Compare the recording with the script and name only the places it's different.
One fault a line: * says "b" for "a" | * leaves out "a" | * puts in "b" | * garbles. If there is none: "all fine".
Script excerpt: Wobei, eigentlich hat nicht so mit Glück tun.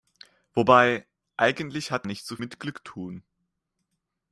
all fine